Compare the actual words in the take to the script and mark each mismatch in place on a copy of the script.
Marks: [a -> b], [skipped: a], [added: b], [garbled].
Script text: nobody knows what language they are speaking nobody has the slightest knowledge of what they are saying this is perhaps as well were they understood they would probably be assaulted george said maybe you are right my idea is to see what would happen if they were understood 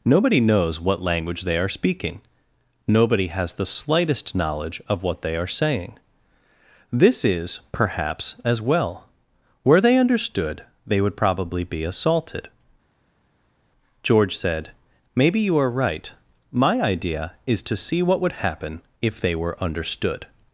nobody knows what language they are speaking nobody has the slightest knowledge of what they are saying this is perhaps as well were they understood they would probably be assaulted george said maybe you are right my idea is to see what would happen if they were understood